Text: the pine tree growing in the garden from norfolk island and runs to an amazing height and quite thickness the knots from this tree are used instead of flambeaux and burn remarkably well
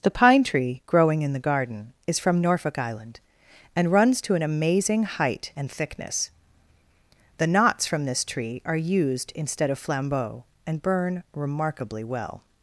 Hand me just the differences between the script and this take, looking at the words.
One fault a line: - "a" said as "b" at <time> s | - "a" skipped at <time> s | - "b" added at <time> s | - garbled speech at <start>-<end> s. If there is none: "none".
- "is" added at 2.1 s
- "quite" skipped at 5.7 s